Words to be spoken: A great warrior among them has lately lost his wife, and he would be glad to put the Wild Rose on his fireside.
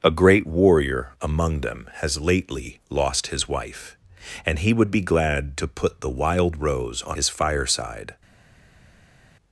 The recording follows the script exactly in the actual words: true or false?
true